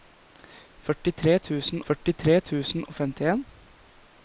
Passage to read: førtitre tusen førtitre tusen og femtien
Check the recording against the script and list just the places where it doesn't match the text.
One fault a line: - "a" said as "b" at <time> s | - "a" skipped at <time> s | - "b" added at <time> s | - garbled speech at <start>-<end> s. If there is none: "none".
none